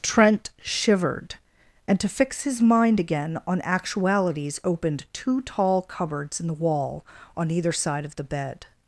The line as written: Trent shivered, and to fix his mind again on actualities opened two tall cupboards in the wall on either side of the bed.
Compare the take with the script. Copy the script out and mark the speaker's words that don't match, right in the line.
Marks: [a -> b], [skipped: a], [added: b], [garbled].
Trent shivered, and to fix his mind again on actualities opened two tall cupboards in the wall on either side of the bed.